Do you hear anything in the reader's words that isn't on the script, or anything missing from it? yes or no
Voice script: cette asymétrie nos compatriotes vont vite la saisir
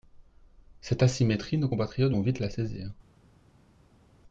no